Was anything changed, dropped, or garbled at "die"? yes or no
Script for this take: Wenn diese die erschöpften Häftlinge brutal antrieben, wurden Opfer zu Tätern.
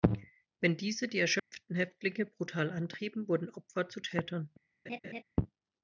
no